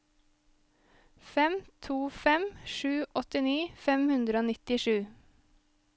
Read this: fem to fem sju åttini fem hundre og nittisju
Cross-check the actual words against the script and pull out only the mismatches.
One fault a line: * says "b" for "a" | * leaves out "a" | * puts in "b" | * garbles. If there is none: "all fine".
all fine